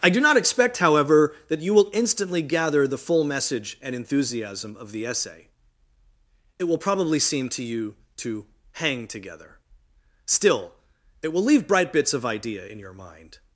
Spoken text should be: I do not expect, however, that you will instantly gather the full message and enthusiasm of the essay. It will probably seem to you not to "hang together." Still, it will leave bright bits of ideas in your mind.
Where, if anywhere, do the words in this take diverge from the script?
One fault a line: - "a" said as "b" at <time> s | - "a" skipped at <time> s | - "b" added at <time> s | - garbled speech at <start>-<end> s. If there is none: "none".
- "not" skipped at 8.0 s
- "ideas" said as "idea" at 12.2 s